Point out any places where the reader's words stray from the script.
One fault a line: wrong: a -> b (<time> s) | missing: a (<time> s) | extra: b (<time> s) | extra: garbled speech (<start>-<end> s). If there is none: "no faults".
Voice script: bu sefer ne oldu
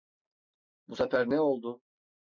no faults